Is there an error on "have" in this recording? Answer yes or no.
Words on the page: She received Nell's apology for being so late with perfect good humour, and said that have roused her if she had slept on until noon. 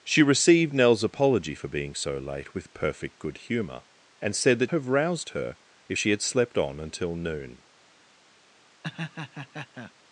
no